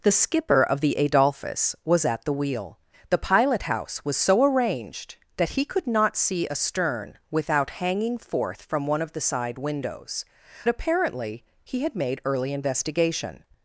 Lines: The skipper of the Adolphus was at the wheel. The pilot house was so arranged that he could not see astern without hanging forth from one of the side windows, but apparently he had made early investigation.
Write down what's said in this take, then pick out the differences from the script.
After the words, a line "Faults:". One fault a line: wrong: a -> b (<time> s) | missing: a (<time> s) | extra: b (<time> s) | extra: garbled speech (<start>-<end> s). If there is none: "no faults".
The skipper of the Adolphus was at the wheel. The pilot house was so arranged that he could not see astern without hanging forth from one of the side windows, apparently he had made early investigation.
Faults:
missing: but (10.2 s)